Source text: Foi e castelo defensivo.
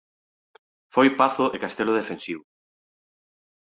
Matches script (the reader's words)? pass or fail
fail